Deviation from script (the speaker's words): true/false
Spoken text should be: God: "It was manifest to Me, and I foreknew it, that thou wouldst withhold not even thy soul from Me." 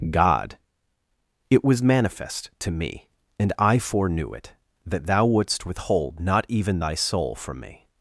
false